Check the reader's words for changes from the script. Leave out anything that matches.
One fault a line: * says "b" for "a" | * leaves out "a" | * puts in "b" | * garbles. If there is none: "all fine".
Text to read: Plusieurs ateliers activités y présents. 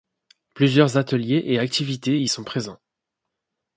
* puts in "et"
* puts in "sont"